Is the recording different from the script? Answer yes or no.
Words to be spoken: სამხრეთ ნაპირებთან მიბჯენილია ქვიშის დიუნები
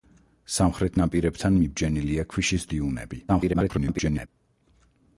yes